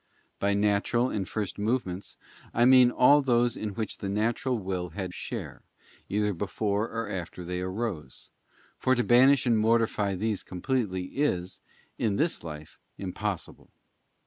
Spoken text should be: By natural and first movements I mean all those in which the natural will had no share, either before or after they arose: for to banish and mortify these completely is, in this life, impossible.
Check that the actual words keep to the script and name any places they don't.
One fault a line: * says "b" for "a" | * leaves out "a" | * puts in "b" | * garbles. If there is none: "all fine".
* leaves out "no"